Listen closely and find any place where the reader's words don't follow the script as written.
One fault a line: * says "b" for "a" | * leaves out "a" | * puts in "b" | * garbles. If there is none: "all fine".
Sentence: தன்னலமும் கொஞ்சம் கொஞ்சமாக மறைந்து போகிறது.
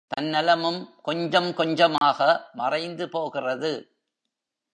all fine